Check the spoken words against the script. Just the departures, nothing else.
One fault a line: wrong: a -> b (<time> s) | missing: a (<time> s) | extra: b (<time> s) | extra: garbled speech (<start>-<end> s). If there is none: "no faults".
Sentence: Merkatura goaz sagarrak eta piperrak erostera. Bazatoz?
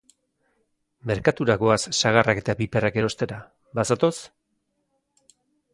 no faults